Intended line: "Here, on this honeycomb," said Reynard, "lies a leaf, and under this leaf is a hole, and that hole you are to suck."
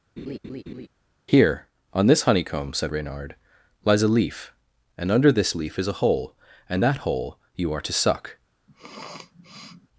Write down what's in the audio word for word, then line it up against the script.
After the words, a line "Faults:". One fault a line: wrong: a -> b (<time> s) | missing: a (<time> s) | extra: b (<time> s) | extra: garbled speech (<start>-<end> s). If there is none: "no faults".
"Here, on this honeycomb," said Reynard, "lies a leaf, and under this leaf is a hole, and that hole you are to suck."
Faults:
no faults